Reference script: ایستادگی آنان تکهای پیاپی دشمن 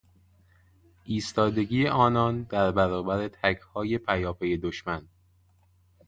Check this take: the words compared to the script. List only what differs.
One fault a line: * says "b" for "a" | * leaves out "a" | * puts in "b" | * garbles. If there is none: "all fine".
* puts in "در برابر"